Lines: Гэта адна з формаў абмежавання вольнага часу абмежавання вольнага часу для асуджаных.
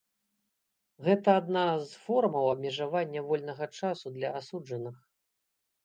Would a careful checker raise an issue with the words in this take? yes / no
yes